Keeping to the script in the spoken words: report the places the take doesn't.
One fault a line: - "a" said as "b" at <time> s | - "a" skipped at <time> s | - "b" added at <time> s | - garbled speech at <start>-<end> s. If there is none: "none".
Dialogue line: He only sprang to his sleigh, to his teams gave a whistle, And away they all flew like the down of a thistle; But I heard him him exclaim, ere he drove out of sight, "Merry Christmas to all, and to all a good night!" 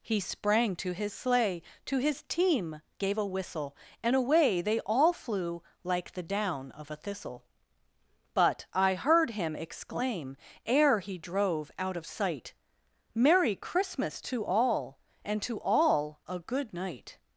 - "only" skipped at 0.2 s
- "teams" said as "team" at 2.2 s
- "him" skipped at 9.6 s